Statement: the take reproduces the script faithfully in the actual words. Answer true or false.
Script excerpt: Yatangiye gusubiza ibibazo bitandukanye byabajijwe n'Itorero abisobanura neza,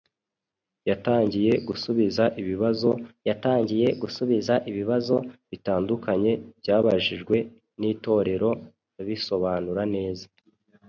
false